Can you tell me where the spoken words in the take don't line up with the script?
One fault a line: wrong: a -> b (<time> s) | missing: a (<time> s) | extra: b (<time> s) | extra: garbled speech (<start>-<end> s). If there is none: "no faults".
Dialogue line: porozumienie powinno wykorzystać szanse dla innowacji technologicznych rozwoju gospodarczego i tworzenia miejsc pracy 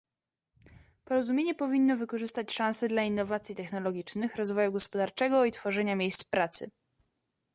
no faults